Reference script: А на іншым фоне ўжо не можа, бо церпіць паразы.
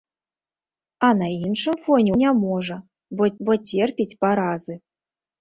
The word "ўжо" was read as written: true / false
false